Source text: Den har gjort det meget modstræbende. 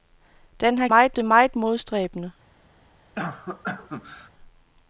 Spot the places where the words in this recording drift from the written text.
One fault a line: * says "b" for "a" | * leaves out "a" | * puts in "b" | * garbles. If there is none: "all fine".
* says "meget" for "gjort"